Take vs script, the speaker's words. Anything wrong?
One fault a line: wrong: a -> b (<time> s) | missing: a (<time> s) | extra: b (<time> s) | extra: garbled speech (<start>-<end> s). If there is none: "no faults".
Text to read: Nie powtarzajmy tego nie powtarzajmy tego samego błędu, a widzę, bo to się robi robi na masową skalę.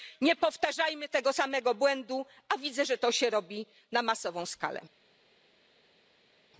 missing: nie powtarzajmy tego (1.3 s)
wrong: bo -> że (2.8 s)
missing: robi (3.6 s)